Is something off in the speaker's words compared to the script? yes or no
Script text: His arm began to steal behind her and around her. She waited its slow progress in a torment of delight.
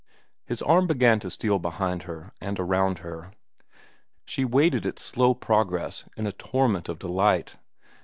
no